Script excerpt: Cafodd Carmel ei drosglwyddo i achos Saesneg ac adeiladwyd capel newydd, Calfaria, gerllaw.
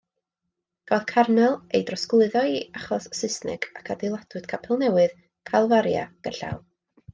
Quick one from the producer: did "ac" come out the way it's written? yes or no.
yes